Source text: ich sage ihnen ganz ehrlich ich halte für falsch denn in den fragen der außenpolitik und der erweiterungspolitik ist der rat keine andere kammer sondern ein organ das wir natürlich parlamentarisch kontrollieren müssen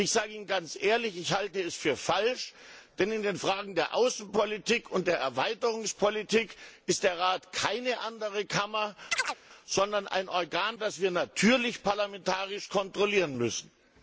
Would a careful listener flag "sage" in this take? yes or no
no